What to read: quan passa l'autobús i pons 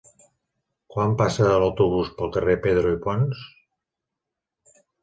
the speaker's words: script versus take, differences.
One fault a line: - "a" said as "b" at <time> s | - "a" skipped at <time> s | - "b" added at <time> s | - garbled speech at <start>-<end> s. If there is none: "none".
- "pel carrer pedro" added at 2.2 s